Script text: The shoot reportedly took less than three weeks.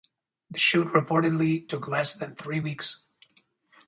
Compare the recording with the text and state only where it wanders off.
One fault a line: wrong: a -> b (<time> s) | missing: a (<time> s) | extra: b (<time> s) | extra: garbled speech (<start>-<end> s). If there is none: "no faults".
no faults